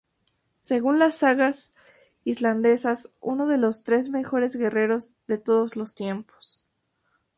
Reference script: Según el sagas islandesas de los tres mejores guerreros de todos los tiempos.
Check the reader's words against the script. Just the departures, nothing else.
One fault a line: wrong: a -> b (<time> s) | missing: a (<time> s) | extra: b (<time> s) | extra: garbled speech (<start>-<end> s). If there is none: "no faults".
wrong: el -> las (1.0 s)
extra: uno (3.2 s)